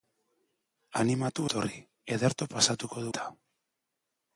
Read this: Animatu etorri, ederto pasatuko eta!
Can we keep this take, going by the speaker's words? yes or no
yes